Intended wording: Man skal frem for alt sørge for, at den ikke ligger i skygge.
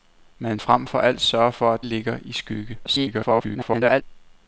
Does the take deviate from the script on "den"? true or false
true